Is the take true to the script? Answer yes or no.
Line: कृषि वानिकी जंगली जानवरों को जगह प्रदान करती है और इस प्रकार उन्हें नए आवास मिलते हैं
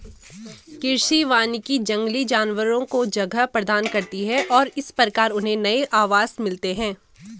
yes